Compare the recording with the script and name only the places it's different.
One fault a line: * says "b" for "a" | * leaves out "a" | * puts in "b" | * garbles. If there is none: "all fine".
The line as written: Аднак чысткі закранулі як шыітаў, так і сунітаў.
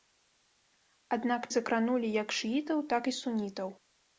* leaves out "чысткі"